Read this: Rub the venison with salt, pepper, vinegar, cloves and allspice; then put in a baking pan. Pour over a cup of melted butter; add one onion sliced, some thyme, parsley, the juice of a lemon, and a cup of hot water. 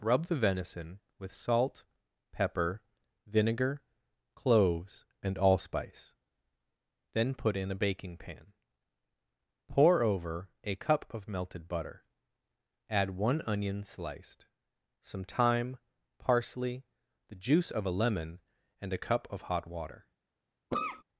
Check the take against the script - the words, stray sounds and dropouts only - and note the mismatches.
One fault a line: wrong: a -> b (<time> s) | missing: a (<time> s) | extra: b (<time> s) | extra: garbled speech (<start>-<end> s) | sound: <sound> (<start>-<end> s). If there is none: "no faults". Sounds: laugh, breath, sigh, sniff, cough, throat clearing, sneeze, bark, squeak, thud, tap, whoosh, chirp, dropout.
sound: cough (20.7-21.0 s)